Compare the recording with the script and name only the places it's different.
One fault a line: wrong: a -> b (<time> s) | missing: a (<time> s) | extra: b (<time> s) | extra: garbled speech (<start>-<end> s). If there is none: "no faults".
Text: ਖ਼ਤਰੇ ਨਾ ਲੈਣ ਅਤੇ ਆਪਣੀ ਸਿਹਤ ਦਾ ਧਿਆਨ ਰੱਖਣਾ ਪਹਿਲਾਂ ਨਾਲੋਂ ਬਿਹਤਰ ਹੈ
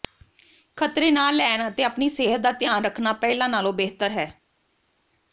no faults